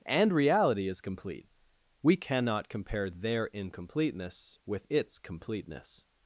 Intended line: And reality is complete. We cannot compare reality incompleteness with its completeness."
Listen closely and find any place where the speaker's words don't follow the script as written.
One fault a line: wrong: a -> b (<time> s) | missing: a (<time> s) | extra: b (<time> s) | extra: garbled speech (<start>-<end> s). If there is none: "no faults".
wrong: reality -> their (3.1 s)